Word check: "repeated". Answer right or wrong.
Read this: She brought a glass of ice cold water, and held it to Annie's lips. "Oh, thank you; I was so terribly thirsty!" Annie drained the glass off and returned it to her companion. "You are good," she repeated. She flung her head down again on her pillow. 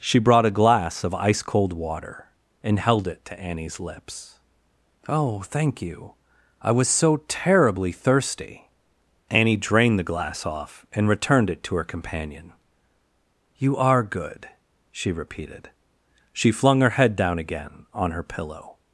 right